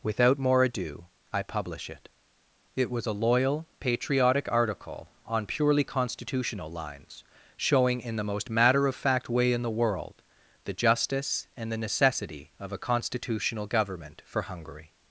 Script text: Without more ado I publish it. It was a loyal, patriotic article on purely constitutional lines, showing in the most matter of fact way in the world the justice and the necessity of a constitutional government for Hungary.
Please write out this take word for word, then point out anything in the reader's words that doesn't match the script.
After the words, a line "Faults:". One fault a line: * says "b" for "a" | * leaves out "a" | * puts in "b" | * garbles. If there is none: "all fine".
Without more ado I publish it. It was a loyal, patriotic article on purely constitutional lines, showing in the most matter of fact way in the world the justice and the necessity of a constitutional government for Hungary.
Faults:
all fine